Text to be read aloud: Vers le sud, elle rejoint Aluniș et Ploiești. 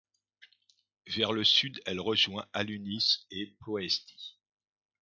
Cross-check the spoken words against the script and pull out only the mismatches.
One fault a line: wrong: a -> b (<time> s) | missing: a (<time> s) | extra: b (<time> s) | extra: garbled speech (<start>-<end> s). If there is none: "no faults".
no faults